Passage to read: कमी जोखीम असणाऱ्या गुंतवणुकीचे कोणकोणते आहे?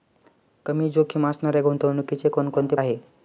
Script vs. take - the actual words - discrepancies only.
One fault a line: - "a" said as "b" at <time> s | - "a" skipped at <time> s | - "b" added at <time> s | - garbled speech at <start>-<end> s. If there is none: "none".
none